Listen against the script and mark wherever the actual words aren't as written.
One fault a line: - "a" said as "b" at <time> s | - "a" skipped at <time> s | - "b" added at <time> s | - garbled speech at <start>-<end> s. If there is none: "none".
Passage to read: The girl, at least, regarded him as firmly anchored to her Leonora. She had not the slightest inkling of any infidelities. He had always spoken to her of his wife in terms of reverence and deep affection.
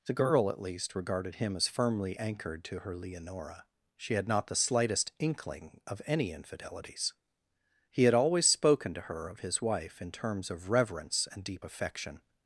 none